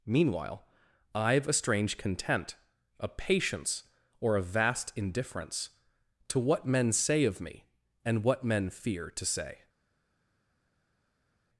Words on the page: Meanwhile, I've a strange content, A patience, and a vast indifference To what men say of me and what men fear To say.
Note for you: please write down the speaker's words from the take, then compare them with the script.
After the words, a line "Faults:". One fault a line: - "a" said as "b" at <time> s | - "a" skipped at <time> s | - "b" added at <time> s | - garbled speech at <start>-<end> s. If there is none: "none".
Meanwhile, I've a strange content, A patience, or a vast indifference To what men say of me and what men fear To say.
Faults:
- "and" said as "or" at 4.2 s